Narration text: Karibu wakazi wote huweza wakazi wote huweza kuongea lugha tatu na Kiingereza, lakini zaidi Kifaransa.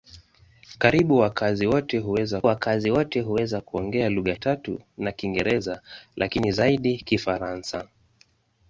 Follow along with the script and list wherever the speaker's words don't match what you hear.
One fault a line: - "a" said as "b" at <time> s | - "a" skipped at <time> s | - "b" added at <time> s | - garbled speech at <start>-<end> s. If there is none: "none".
none